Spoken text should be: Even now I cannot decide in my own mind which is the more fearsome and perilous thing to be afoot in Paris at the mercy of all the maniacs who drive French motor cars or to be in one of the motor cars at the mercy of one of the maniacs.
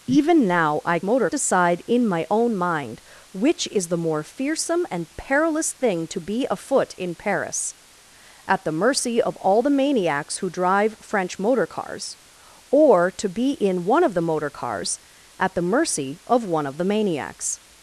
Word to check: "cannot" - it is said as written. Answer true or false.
false